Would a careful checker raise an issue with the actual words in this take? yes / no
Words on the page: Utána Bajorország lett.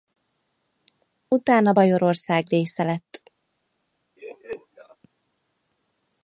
yes